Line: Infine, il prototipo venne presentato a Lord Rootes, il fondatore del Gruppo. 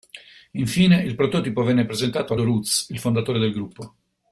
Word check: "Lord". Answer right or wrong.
wrong